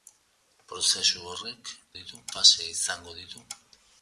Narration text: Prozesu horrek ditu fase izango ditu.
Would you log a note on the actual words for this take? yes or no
no